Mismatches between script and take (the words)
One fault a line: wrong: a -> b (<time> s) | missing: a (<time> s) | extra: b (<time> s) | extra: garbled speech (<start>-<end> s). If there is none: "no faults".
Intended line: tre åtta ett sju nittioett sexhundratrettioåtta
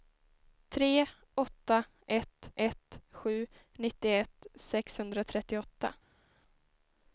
extra: ett (2.6 s)